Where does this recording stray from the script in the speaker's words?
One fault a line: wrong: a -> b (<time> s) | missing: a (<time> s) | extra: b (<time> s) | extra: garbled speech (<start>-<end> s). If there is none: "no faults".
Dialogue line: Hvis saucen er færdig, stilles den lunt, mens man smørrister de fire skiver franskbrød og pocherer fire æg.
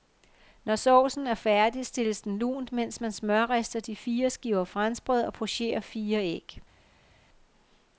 wrong: Hvis -> Når (0.6 s)